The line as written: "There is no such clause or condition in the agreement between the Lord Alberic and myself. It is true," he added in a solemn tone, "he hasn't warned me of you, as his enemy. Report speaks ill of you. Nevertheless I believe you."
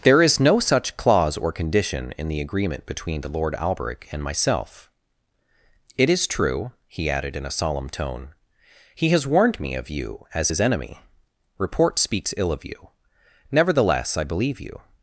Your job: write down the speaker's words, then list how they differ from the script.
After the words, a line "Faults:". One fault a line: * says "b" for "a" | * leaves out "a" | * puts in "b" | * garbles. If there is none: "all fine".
"There is no such clause or condition in the agreement between the Lord Alberic and myself. It is true," he added in a solemn tone, "he has warned me of you, as his enemy. Report speaks ill of you. Nevertheless I believe you."
Faults:
* says "has" for "hasn't"